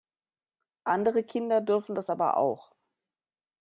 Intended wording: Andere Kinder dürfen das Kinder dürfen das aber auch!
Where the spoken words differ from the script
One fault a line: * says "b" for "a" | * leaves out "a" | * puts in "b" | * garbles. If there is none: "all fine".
* leaves out "Kinder dürfen das"